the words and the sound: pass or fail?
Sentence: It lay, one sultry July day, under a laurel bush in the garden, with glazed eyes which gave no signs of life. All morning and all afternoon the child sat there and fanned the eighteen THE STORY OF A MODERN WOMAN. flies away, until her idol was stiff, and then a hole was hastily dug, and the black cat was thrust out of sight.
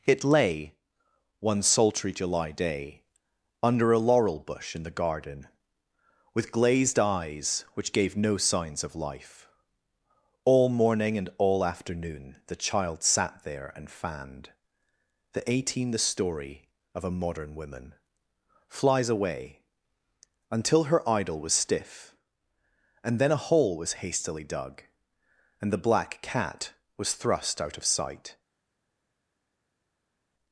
pass